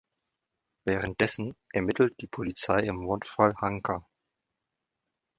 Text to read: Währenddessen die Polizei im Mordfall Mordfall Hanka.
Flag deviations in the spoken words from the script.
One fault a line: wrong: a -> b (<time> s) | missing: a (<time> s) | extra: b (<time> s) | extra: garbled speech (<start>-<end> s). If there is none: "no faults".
extra: ermittelt (1.7 s)
missing: Mordfall (3.5 s)